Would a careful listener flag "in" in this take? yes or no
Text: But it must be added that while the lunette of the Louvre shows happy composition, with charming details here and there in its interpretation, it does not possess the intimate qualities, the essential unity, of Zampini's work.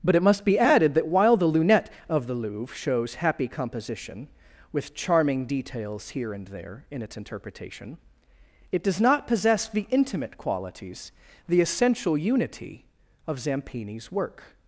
no